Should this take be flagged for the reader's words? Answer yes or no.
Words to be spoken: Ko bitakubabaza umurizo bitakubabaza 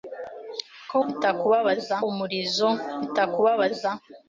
no